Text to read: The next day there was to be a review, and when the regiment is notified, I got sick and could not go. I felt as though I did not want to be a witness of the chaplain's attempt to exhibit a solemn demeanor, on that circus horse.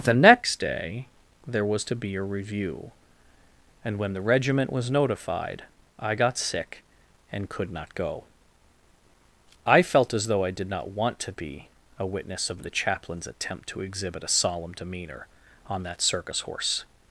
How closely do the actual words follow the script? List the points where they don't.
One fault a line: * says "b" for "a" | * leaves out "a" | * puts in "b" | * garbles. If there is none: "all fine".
* says "was" for "is"